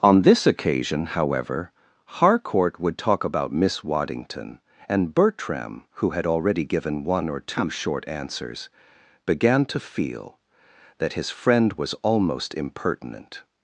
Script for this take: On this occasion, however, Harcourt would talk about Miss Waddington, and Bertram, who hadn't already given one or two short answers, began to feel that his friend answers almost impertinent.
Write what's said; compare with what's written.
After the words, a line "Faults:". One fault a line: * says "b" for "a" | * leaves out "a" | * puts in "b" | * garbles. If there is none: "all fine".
On this occasion, however, Harcourt would talk about Miss Waddington, and Bertram, who had already given one or two short answers, began to feel that his friend was almost impertinent.
Faults:
* says "had" for "hadn't"
* says "was" for "answers"